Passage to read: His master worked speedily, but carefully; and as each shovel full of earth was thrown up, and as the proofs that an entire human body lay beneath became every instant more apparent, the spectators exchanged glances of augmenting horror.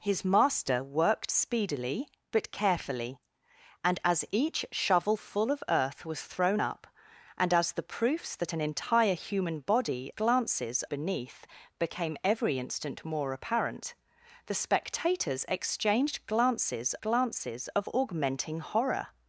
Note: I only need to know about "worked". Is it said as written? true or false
true